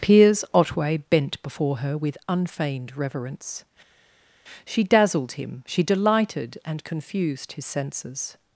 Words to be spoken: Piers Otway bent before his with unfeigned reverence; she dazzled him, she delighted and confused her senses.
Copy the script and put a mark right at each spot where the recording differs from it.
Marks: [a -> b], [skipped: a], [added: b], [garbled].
Piers Otway bent before [his -> her] with unfeigned reverence; she dazzled him, she delighted and confused [her -> his] senses.